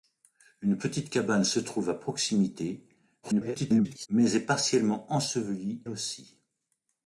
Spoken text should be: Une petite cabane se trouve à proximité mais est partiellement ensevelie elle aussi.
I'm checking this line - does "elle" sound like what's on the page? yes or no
no